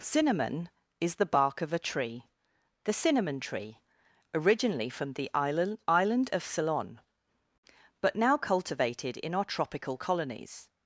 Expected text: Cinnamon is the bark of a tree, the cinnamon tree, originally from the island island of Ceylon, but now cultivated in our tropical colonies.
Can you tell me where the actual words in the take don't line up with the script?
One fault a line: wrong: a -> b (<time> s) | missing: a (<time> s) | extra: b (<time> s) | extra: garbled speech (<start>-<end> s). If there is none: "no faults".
no faults